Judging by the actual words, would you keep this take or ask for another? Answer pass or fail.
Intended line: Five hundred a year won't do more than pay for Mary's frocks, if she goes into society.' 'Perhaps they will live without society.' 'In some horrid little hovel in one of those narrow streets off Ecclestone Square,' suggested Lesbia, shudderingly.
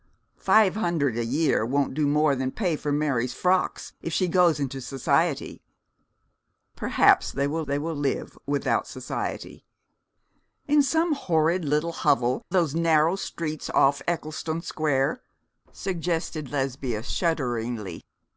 fail